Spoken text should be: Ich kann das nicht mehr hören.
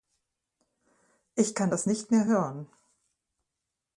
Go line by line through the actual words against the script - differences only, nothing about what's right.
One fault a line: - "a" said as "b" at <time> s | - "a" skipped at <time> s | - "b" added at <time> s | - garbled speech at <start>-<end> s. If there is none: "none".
none